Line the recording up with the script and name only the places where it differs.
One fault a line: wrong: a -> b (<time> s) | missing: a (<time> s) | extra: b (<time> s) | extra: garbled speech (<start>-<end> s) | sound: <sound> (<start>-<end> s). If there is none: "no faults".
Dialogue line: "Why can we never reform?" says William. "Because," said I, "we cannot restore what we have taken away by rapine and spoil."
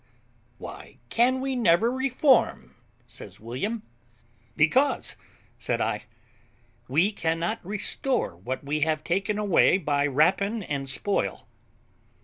no faults